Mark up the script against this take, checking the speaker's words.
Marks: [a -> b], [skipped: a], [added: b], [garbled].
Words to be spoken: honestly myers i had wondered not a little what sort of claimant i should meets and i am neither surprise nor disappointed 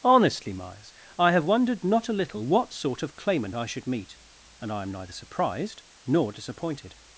honestly myers i [had -> have] wondered not a little what sort of claimant i should [meets -> meet] and i am neither [surprise -> surprised] nor disappointed